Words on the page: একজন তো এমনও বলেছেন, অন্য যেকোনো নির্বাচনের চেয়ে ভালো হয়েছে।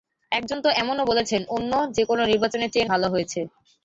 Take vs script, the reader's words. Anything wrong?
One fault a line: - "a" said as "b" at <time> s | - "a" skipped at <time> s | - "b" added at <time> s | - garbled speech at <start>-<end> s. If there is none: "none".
none